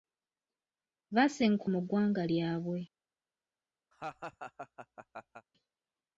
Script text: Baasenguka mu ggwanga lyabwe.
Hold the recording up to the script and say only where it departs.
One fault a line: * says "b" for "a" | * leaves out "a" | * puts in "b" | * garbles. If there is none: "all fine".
all fine